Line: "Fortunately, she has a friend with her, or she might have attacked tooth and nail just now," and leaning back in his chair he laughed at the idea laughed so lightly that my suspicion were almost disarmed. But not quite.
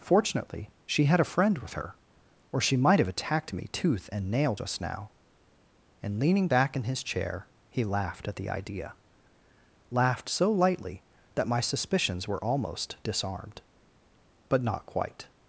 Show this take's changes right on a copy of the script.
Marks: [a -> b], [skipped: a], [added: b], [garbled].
"Fortunately, she [has -> had] a friend with her, or she might have attacked [added: me] tooth and nail just now," and leaning back in his chair he laughed at the idea laughed so lightly that my [suspicion -> suspicions] were almost disarmed. But not quite.